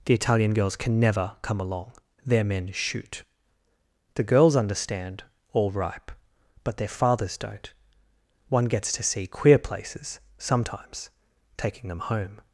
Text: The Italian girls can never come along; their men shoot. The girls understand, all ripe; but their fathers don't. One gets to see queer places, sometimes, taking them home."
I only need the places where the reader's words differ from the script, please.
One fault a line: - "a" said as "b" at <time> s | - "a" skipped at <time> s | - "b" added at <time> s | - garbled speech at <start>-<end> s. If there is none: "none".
none